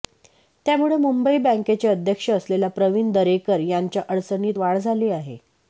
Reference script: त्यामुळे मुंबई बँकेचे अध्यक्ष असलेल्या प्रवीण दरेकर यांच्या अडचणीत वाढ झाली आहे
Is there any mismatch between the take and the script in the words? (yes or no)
no